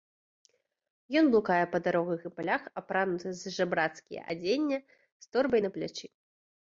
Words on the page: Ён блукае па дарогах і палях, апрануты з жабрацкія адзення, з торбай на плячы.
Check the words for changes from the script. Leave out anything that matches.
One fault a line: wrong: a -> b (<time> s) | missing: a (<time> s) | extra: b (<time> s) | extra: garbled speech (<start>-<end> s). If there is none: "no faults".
no faults